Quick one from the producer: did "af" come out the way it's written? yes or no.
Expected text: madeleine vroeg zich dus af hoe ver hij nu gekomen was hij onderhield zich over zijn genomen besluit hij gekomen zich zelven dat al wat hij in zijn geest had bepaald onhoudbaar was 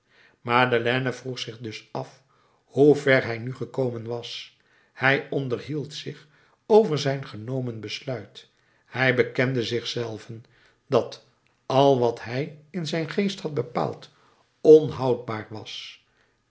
yes